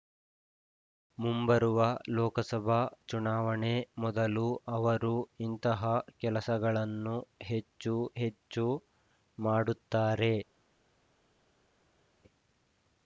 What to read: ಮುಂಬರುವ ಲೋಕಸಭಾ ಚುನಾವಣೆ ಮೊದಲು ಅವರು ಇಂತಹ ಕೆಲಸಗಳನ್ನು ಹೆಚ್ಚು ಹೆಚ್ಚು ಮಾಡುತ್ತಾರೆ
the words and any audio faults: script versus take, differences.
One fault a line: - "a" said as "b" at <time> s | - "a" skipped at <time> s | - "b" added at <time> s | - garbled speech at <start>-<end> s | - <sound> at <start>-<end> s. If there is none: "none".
none